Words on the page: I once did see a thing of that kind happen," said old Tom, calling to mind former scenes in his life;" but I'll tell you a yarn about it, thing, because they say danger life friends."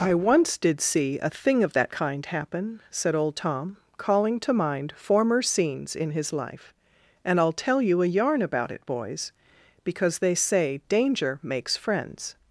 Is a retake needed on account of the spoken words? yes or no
yes